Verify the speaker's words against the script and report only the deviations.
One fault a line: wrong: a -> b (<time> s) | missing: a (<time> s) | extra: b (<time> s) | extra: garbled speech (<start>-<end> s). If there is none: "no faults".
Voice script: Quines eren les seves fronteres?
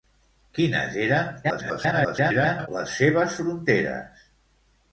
extra: garbled speech (1.4-2.7 s)